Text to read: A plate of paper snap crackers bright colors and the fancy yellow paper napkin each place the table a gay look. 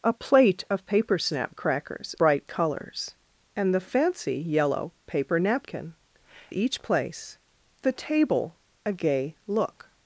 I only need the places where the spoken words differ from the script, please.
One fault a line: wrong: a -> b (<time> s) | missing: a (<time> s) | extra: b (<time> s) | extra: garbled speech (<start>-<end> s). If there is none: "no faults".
no faults